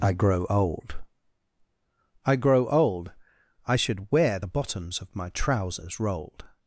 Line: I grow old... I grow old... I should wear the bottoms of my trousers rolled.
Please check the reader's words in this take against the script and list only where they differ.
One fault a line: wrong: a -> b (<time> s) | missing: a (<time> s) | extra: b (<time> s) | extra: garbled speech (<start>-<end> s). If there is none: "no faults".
no faults